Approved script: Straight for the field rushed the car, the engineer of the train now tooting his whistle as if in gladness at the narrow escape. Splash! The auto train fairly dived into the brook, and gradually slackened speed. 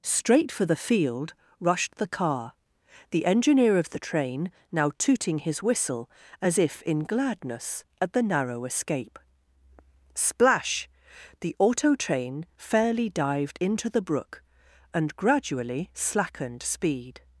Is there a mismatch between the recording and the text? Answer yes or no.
no